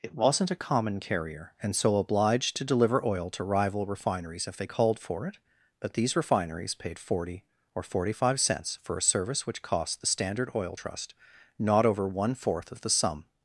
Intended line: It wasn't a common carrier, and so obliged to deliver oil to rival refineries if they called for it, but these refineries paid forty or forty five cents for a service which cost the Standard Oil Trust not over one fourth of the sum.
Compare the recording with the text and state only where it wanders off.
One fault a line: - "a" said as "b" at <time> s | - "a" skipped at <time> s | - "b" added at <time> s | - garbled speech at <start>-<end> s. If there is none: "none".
none